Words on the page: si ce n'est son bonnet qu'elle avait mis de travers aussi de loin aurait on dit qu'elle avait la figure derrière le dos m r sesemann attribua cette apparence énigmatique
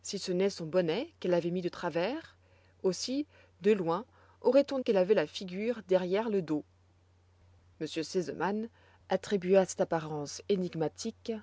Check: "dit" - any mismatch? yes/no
yes